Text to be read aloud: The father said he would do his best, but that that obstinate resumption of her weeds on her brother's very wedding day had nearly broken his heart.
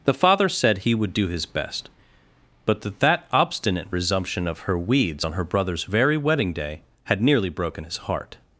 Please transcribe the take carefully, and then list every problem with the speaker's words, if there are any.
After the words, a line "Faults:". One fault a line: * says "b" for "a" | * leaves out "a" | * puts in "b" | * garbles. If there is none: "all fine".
The father said he would do his best, but that that obstinate resumption of her weeds on her brother's very wedding day had nearly broken his heart.
Faults:
all fine